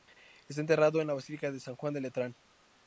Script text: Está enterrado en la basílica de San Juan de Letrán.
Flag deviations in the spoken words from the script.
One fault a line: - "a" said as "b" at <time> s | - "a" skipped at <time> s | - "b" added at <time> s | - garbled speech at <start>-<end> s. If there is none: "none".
none